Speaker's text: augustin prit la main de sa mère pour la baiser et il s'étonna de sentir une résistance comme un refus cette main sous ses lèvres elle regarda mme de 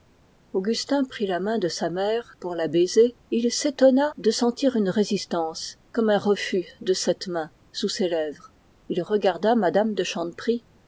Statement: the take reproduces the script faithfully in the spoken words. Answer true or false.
false